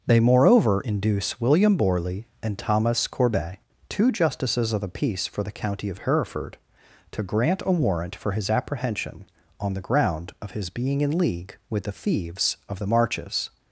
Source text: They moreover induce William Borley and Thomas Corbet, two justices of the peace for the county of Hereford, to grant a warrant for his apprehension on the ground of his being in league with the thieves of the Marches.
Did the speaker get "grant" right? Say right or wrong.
right